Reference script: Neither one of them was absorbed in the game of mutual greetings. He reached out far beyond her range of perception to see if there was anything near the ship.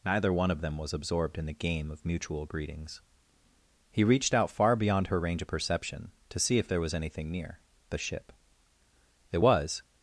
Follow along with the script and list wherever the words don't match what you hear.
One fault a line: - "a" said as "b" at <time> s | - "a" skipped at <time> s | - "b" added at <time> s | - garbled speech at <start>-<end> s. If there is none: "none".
- "It was" added at 9.3 s